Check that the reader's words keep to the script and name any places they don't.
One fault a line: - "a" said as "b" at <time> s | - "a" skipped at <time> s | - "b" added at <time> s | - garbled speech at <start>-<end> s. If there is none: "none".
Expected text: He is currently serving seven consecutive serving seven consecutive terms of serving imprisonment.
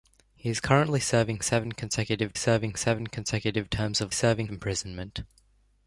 none